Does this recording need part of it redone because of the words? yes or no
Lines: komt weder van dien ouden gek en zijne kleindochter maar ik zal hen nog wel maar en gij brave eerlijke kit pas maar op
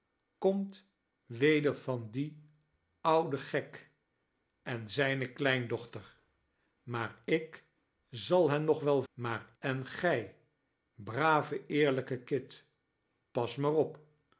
no